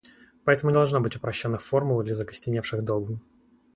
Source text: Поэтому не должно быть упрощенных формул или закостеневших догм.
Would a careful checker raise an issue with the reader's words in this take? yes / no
yes